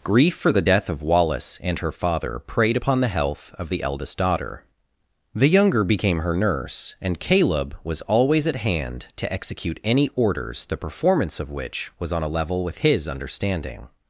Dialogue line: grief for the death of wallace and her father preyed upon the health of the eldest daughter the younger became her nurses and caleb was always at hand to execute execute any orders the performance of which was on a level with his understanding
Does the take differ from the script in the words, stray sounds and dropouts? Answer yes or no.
yes